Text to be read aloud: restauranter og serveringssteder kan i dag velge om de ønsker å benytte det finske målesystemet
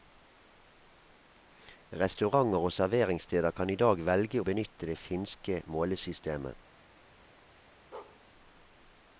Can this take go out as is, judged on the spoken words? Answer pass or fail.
fail